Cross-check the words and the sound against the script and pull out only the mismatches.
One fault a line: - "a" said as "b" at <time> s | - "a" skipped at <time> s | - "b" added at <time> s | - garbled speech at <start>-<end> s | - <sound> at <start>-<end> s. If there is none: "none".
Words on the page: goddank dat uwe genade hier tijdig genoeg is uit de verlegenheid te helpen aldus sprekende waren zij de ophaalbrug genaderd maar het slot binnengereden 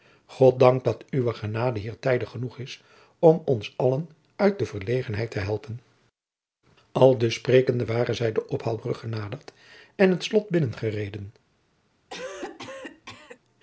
- "om ons allen" added at 3.2 s
- "maar" said as "en" at 9.9 s
- cough at 12.1-13.4 s